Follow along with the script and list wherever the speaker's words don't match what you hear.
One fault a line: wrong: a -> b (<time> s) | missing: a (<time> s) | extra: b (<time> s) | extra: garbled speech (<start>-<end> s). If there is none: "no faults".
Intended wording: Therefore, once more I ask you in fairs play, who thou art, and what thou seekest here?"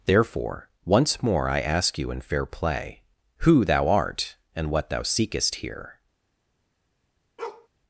wrong: fairs -> fair (2.2 s)